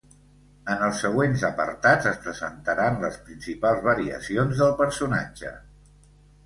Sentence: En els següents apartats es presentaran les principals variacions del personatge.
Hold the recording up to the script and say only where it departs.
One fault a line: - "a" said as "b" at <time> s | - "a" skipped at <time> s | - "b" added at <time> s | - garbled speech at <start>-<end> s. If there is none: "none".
none